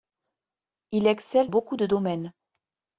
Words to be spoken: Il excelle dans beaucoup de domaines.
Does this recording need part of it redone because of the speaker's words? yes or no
yes